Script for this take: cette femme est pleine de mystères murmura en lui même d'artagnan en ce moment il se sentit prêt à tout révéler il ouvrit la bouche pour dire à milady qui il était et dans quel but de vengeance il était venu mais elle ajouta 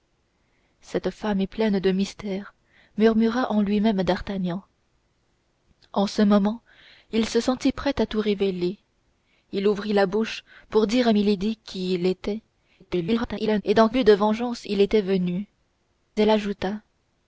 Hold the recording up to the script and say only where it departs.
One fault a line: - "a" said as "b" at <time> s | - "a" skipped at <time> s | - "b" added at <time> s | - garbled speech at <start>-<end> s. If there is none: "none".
- garbled speech at 12.8-13.6 s
- "quel" skipped at 13.9 s
- "mais" skipped at 15.5 s